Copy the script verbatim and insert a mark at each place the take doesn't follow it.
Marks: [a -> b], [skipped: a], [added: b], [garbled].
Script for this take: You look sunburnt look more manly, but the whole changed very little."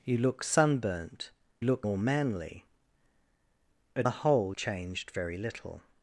You look sunburnt look more manly, but the whole changed very little."